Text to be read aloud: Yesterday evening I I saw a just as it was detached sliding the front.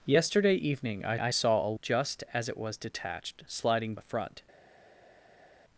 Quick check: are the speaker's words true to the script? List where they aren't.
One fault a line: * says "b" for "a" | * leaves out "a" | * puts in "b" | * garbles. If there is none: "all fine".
all fine